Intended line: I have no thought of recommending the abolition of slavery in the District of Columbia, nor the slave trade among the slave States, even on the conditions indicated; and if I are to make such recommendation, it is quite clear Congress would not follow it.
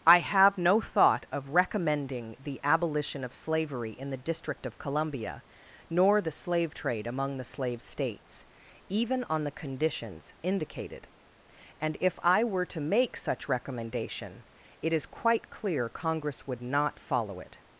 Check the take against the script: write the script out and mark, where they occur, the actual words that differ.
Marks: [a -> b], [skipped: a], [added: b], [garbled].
I have no thought of recommending the abolition of slavery in the District of Columbia, nor the slave trade among the slave States, even on the conditions indicated; and if I [are -> were] to make such recommendation, it is quite clear Congress would not follow it.